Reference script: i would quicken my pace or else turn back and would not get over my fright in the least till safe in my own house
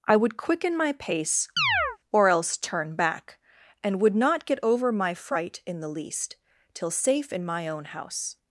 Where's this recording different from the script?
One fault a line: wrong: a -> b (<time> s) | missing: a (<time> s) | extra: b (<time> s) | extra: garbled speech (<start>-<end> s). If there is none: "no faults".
no faults